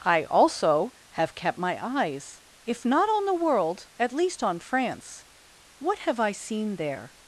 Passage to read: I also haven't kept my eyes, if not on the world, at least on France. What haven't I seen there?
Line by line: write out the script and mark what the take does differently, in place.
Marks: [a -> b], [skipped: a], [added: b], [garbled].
I also [haven't -> have] kept my eyes, if not on the world, at least on France. What [haven't -> have] I seen there?